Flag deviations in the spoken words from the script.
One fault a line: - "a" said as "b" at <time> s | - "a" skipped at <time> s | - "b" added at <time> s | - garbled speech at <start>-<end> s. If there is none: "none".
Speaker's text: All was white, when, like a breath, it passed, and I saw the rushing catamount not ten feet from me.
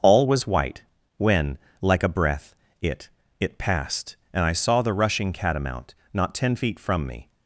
- "it" added at 3.4 s